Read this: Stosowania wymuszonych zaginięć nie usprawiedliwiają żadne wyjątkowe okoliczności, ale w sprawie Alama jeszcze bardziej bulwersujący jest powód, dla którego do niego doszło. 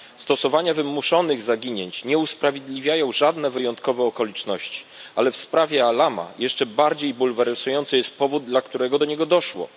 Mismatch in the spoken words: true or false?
false